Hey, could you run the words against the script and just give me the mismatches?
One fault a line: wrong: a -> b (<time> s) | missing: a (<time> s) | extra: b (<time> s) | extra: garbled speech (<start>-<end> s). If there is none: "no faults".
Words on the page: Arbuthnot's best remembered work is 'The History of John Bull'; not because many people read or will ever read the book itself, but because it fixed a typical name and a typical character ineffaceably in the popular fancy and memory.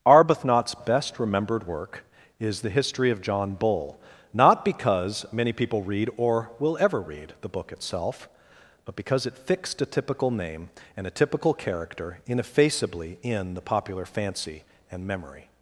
no faults